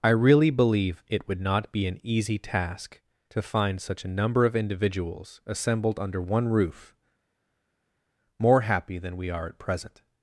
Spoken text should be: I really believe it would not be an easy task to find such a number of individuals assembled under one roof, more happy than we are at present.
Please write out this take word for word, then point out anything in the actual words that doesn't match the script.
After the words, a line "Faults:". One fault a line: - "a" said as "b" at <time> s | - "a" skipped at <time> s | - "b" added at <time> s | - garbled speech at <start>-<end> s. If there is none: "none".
I really believe it would not be an easy task to find such a number of individuals assembled under one roof, more happy than we are at present.
Faults:
none